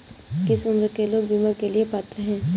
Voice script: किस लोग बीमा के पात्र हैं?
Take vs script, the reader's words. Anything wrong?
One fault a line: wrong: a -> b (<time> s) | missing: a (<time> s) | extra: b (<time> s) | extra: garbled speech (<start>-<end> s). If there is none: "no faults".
extra: उम्र के (0.7 s)
extra: लिए (1.7 s)